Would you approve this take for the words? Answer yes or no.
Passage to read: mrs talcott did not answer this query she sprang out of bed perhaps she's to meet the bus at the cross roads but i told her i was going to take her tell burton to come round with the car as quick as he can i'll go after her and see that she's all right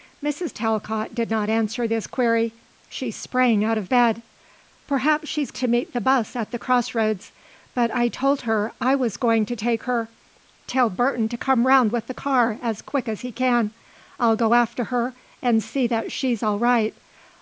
yes